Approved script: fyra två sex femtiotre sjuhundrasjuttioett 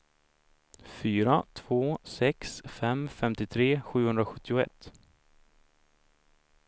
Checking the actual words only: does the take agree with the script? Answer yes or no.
no